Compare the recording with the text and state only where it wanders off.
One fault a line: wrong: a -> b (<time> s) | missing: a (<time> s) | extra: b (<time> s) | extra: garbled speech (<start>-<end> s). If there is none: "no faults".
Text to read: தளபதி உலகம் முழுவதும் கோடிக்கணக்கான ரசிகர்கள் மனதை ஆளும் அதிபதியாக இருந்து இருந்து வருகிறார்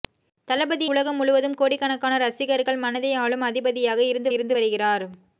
no faults